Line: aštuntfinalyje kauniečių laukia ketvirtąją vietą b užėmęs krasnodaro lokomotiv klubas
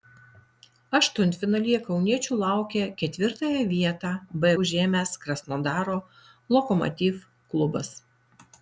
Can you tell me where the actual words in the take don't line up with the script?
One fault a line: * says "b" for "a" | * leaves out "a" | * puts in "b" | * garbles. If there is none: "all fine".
all fine